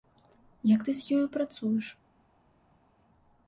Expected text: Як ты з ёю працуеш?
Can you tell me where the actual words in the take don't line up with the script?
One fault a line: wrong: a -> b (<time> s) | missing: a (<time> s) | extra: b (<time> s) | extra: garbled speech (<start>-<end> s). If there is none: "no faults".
no faults